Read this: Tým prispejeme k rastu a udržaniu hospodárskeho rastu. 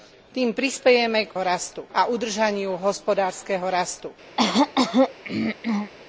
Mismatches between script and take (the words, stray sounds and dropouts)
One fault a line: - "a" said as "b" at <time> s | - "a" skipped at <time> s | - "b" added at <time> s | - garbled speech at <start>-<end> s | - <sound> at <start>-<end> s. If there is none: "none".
- throat clearing at 4.4-5.9 s